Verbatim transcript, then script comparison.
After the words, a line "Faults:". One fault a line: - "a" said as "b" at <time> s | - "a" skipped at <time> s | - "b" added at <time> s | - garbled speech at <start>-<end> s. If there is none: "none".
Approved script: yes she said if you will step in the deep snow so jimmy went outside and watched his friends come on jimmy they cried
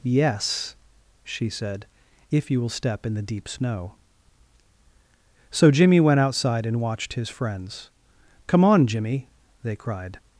yes she said if you will step in the deep snow so jimmy went outside and watched his friends come on jimmy they cried
Faults:
none